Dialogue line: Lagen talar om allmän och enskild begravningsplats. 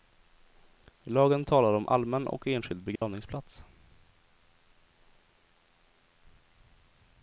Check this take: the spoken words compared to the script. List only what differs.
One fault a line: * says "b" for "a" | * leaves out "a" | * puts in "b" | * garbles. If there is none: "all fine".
all fine